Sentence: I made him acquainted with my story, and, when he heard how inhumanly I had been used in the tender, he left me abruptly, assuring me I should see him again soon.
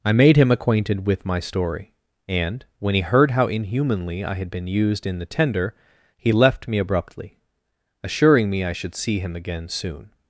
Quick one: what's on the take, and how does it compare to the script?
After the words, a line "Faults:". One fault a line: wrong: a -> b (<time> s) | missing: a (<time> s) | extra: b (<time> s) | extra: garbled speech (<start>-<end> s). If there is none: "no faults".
I made him acquainted with my story, and, when he heard how inhumanly I had been used in the tender, he left me abruptly, assuring me I should see him again soon.
Faults:
no faults